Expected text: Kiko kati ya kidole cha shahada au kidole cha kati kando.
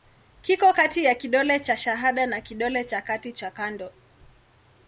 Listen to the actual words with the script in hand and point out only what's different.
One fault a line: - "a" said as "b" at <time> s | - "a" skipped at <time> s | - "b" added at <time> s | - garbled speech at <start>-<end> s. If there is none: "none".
- "au" said as "na" at 2.3 s
- "cha" added at 3.3 s